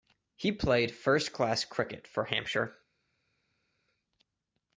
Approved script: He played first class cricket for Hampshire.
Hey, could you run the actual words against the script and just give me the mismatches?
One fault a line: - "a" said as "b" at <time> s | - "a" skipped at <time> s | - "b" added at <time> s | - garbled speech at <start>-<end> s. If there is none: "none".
none